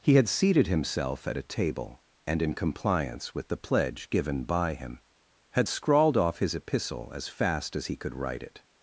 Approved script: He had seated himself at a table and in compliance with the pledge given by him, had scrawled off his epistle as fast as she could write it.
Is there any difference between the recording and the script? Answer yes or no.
yes